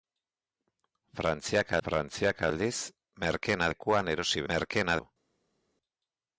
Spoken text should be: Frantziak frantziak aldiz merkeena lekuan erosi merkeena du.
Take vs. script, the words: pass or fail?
pass